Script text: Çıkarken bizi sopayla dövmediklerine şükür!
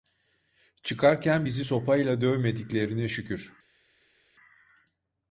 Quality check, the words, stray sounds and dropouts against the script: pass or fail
pass